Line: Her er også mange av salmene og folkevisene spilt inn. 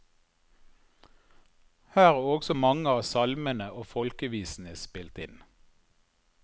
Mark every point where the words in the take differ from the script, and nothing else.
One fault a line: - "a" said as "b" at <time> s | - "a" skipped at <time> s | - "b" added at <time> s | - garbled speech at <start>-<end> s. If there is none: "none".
none